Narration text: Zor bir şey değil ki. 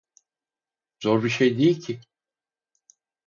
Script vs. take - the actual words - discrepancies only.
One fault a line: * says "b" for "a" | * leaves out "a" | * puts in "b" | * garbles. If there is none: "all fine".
all fine